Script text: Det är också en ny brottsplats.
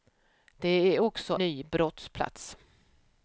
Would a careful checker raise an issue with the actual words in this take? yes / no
yes